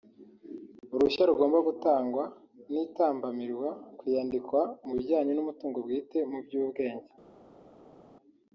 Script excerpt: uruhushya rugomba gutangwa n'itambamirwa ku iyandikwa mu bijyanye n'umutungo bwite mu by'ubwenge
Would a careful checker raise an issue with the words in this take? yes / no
no